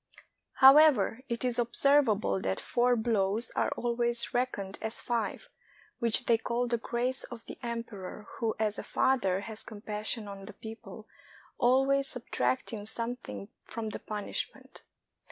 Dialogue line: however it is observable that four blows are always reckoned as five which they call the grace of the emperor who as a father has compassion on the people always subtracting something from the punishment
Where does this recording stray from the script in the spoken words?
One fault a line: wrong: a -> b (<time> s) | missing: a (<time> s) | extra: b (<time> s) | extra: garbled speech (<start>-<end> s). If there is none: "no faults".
no faults